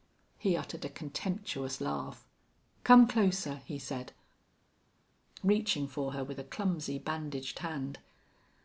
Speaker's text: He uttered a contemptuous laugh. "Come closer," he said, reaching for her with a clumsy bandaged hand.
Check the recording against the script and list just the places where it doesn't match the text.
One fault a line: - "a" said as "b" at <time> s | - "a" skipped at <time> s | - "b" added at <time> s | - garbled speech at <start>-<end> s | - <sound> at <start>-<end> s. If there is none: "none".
none